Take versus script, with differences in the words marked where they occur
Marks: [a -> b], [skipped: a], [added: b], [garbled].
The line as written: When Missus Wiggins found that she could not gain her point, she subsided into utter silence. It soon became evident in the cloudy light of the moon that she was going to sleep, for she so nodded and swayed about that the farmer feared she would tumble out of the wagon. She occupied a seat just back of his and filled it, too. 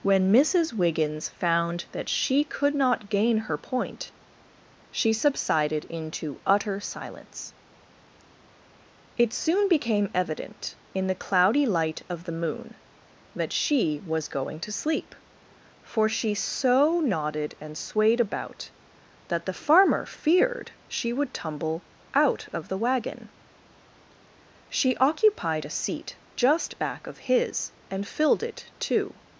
When Missus Wiggins found that she could not gain her point, she subsided into utter silence. It soon became evident in the cloudy light of the moon that she was going to sleep, for she so nodded and swayed about that the farmer feared she would tumble out of the wagon. She occupied a seat just back of his and filled it, too.